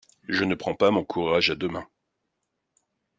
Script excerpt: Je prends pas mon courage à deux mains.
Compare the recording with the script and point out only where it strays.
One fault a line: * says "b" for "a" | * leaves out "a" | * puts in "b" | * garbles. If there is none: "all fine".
* puts in "ne"